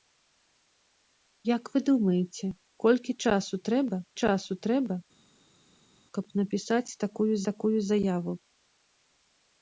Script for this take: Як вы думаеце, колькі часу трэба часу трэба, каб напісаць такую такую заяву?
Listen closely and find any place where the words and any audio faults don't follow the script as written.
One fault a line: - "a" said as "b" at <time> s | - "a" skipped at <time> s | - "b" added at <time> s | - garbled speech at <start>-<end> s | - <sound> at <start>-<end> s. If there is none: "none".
none